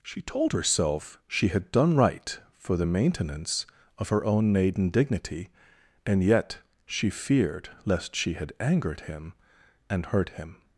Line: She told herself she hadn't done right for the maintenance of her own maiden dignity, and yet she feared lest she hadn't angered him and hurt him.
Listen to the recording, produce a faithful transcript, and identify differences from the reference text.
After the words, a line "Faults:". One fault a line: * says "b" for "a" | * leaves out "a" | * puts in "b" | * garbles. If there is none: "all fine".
She told herself she had done right for the maintenance of her own maiden dignity, and yet she feared lest she had angered him and hurt him.
Faults:
* says "had" for "hadn't"
* says "had" for "hadn't"